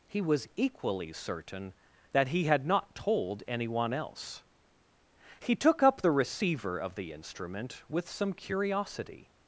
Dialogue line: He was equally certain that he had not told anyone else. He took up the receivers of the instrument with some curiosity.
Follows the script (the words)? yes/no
no